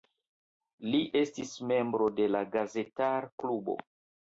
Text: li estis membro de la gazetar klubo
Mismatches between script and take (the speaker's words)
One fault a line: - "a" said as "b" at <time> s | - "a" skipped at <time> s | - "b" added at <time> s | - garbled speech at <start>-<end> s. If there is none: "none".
none